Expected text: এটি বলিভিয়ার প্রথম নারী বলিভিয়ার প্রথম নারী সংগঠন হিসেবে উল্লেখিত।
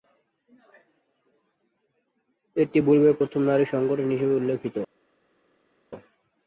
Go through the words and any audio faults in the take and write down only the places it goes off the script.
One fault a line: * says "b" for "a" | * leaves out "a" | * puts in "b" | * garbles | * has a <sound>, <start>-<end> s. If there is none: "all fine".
* leaves out "বলিভিয়ার প্রথম নারী"